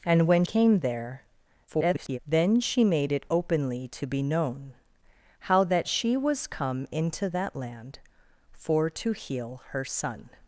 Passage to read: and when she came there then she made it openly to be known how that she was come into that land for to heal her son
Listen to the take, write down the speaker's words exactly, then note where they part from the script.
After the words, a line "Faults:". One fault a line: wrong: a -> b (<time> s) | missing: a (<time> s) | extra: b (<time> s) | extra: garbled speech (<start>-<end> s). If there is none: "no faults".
and when came there [garbled] then she made it openly to be known how that she was come into that land for to heal her son
Faults:
missing: she (0.4 s)
extra: garbled speech (1.7-2.2 s)